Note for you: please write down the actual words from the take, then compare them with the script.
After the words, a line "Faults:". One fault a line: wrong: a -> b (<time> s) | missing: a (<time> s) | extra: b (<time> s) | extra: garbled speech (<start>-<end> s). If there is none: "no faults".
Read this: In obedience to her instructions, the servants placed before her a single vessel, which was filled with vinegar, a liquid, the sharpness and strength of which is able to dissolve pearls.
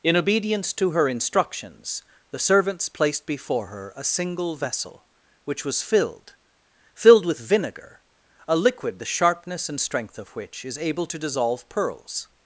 In obedience to her instructions, the servants placed before her a single vessel, which was filled filled with vinegar, a liquid, the sharpness and strength of which is able to dissolve pearls.
Faults:
extra: filled (7.0 s)